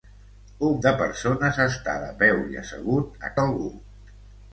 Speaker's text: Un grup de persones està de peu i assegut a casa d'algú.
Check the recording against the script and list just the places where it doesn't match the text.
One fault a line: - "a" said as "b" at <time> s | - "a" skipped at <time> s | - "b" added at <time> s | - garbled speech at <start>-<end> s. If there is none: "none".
- "grup" skipped at 0.8 s
- "casa" skipped at 3.4 s